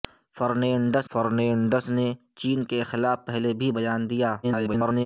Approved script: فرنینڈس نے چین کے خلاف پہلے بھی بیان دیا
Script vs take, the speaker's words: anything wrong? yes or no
yes